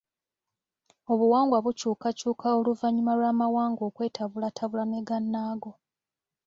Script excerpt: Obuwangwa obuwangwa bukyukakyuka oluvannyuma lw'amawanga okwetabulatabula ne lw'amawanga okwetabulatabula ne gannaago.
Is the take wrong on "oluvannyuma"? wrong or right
right